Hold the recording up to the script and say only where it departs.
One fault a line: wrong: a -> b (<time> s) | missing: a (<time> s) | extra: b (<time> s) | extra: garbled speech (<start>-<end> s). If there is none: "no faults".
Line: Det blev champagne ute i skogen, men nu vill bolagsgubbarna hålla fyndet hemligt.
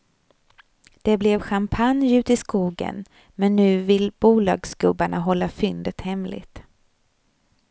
no faults